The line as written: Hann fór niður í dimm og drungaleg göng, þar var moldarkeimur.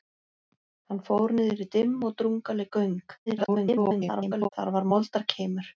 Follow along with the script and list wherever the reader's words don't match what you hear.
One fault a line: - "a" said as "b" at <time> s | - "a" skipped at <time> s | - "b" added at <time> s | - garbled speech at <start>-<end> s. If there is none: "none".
- garbled speech at 3.3-4.5 s